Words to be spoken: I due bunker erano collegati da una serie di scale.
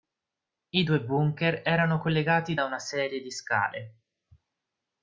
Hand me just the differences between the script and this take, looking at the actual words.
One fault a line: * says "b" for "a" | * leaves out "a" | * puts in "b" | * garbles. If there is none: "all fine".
all fine